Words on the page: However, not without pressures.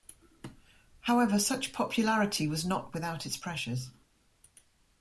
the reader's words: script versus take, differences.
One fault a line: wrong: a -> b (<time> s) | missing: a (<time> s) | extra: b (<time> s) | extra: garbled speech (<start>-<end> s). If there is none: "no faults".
extra: such popularity was (1.4 s)
extra: its (3.3 s)